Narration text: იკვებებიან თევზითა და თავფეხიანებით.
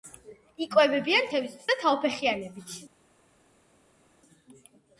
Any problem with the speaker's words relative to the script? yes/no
no